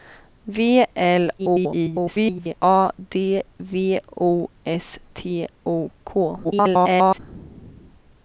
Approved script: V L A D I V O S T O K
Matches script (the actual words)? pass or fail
fail